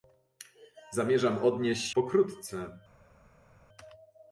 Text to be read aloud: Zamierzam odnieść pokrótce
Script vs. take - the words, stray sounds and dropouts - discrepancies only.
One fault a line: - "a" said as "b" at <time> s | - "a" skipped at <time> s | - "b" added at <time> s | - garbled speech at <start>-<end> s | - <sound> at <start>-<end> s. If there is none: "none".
none